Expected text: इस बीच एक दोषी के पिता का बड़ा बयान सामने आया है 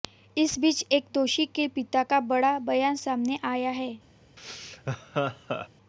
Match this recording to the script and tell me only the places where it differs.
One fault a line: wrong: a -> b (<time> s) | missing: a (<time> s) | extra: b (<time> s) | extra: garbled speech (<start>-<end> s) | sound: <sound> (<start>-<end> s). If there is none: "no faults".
sound: laugh (4.4-5.7 s)